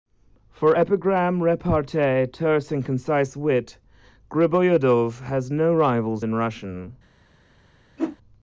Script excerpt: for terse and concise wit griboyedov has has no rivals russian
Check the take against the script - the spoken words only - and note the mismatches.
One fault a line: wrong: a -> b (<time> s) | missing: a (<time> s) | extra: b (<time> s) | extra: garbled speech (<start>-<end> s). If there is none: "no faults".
extra: epigram repartee (0.7 s)
missing: has (5.5 s)
extra: in (6.2 s)